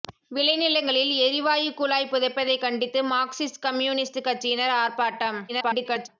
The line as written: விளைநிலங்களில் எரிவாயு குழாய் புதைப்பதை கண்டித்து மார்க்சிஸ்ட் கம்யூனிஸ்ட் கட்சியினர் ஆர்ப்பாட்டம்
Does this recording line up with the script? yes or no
no